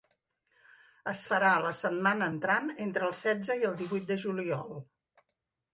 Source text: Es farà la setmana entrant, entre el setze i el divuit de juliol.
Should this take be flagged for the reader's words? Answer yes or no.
no